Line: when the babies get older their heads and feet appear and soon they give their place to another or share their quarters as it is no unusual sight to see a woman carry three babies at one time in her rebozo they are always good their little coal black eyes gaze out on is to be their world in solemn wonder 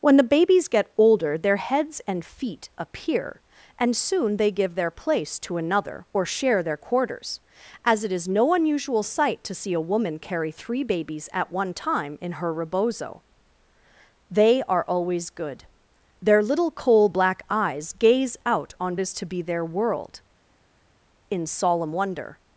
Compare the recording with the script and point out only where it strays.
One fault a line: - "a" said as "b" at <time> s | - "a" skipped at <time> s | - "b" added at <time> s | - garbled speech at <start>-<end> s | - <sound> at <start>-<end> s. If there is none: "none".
none